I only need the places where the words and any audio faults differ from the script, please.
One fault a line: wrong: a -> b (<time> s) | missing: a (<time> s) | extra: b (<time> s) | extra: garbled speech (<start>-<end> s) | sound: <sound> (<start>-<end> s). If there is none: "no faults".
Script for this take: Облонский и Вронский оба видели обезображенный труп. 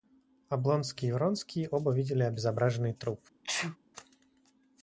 sound: sneeze (3.4-3.8 s)